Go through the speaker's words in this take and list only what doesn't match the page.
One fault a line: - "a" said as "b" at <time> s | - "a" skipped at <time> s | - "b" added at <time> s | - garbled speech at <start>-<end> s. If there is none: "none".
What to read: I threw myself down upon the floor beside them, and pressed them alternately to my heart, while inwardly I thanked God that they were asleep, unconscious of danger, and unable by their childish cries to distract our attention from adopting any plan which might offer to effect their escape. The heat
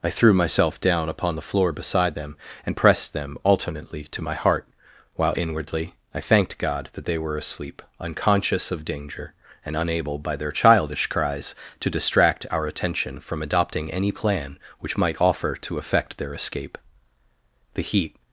none